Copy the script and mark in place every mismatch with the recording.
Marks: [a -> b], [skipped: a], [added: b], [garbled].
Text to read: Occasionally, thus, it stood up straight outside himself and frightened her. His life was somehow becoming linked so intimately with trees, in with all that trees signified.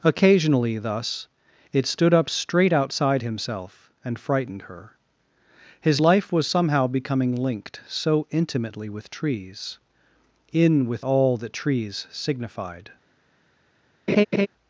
Occasionally, thus, it stood up straight outside himself and frightened her. His life was somehow becoming linked so intimately with trees, in with all that trees signified.